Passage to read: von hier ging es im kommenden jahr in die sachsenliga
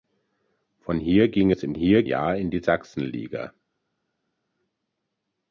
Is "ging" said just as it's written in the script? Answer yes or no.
yes